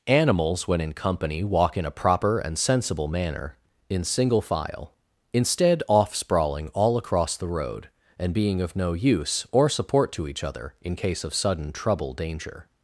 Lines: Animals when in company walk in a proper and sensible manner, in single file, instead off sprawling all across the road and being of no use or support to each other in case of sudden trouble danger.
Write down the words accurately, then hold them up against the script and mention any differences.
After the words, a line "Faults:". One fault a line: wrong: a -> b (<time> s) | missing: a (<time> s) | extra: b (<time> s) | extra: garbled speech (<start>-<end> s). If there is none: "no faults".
Animals when in company walk in a proper and sensible manner, in single file, instead off sprawling all across the road and being of no use or support to each other in case of sudden trouble danger.
Faults:
no faults